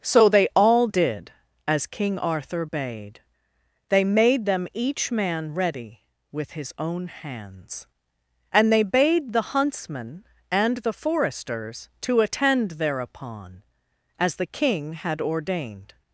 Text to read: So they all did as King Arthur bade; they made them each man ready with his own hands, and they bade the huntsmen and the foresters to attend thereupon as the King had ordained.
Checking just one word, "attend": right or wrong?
right